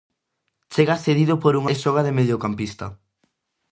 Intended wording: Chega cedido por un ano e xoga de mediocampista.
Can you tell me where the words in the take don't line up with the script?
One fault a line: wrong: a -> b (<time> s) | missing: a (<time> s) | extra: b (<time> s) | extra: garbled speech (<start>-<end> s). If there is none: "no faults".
missing: ano (1.6 s)